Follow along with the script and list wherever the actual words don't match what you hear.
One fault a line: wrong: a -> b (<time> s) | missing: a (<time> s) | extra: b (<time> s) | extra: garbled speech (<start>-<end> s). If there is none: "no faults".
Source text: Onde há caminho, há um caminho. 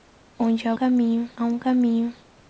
no faults